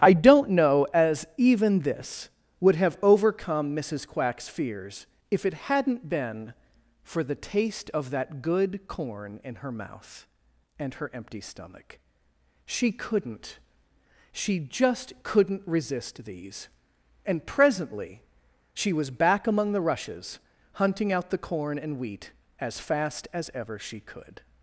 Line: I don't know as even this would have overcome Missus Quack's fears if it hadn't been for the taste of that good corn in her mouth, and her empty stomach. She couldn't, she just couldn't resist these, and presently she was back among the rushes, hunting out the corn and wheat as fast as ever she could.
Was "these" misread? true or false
false